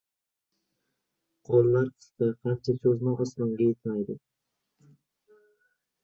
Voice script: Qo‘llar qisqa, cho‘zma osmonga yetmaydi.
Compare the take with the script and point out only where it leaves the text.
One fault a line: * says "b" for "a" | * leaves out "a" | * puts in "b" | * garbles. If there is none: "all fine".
* puts in "qancha"